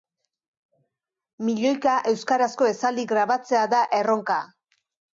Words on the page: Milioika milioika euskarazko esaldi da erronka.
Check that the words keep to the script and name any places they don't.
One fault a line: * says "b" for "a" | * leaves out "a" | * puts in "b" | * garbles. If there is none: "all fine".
* leaves out "milioika"
* puts in "grabatzea"